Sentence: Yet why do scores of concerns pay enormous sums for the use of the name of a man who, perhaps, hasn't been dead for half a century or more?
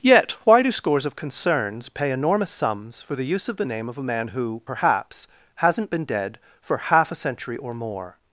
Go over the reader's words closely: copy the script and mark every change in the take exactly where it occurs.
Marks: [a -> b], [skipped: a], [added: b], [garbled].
Yet why do scores of concerns pay enormous sums for the use of the name of a man who, perhaps, hasn't been dead for half a century or more?